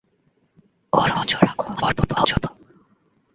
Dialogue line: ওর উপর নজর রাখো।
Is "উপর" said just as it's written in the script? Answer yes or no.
no